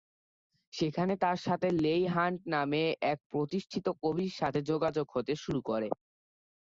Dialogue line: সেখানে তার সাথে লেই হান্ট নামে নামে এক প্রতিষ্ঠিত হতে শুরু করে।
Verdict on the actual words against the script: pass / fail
fail